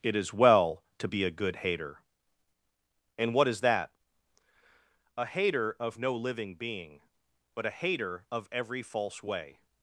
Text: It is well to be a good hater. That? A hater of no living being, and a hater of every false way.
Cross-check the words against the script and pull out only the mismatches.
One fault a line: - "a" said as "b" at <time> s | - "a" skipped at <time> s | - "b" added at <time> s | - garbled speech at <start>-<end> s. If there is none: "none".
- "And what is" added at 3.2 s
- "and" said as "but" at 7.5 s